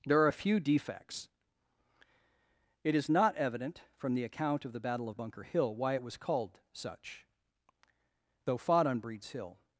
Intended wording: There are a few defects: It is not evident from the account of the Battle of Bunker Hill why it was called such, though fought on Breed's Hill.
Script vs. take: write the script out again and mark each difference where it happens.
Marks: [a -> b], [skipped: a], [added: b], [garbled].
There are a few defects: It is not evident from the account of the Battle of Bunker Hill why it was called such, though fought on Breed's Hill.